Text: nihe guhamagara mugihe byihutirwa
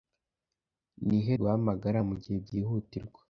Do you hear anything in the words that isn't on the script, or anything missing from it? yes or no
no